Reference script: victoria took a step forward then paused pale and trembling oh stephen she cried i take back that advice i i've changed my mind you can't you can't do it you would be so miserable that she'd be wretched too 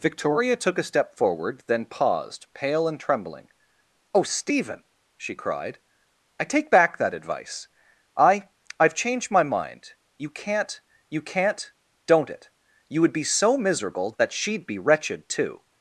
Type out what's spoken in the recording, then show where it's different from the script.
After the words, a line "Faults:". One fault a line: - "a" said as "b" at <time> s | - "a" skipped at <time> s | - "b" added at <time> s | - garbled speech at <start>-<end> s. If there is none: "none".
victoria took a step forward then paused pale and trembling oh stephen she cried i take back that advice i i've changed my mind you can't you can't don't it you would be so miserable that she'd be wretched too
Faults:
- "do" said as "don't" at 12.1 s